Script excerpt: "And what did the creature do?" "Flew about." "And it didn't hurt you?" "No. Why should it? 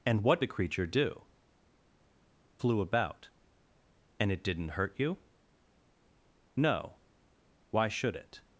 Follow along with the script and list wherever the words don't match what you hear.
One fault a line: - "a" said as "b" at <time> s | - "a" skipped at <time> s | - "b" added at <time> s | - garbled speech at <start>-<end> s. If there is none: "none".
- "did" skipped at 0.4 s